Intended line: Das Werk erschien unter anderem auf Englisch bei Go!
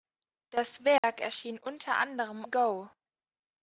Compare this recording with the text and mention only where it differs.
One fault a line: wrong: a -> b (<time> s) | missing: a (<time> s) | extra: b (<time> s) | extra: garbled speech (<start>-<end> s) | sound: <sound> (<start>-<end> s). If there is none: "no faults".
sound: dropout (1.0-1.0 s)
missing: auf Englisch bei (2.4 s)